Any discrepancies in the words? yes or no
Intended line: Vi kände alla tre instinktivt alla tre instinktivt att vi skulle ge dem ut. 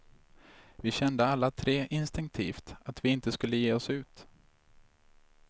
yes